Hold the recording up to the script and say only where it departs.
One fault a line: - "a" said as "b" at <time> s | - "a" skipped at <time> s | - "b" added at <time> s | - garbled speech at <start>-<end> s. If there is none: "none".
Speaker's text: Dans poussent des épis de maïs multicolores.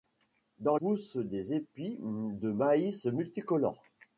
none